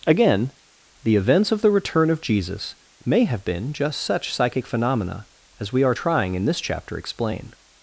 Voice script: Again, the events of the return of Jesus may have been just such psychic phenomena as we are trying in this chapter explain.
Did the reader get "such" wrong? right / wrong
right